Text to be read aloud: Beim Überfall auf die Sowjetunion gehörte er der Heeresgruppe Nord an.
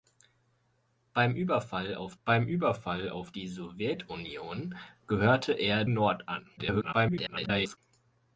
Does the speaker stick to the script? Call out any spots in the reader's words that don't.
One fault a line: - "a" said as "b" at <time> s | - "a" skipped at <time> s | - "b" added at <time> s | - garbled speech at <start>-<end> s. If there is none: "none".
- "beim Überfall auf" added at 2.2 s
- "der Heeresgruppe" skipped at 5.9 s
- garbled speech at 6.6-7.8 s